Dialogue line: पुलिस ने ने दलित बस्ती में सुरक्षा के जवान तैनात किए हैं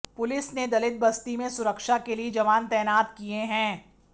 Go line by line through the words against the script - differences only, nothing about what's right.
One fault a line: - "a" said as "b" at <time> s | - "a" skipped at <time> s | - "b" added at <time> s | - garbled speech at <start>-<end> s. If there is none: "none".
- "ने" skipped at 0.7 s
- "लिए" added at 2.1 s